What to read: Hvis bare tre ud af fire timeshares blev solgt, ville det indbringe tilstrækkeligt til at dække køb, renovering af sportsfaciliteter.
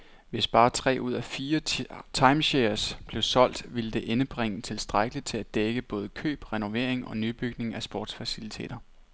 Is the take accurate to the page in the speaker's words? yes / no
no